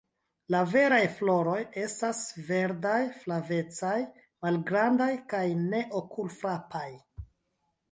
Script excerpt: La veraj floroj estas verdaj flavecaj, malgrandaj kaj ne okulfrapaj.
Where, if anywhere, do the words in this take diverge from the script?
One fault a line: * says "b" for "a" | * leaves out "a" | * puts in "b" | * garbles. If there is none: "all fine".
all fine